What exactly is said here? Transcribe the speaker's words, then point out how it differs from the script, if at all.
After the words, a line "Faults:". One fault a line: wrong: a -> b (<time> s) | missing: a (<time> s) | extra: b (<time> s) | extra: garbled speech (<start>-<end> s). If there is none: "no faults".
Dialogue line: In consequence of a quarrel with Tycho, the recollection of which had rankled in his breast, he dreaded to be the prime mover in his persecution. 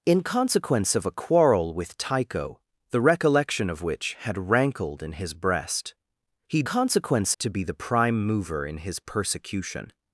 In consequence of a quarrel with Tycho, the recollection of which had rankled in his breast, he consequence to be the prime mover in his persecution.
Faults:
wrong: dreaded -> consequence (6.6 s)